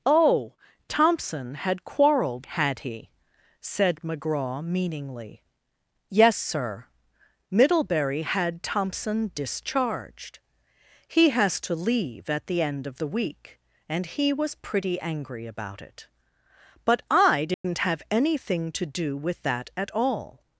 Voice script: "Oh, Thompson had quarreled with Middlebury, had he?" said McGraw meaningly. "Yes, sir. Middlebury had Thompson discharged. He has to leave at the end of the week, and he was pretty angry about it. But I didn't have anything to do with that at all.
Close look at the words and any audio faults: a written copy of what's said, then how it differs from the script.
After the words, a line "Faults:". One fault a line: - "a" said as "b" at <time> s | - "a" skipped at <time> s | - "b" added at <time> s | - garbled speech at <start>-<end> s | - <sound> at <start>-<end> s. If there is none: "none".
"Oh, Thompson had quarreled had he?" said McGraw meaningly. "Yes, sir. Middlebury had Thompson discharged. He has to leave at the end of the week, and he was pretty angry about it. But I didn't have anything to do with that at all.
Faults:
- "with Middlebury" skipped at 2.5 s
- dropout at 17.5-17.6 s